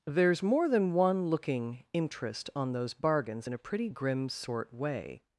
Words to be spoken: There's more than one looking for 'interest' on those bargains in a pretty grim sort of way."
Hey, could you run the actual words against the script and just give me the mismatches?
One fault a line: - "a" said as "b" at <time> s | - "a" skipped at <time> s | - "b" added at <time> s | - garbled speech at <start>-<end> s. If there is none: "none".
- "for" skipped at 1.9 s
- "of" skipped at 4.7 s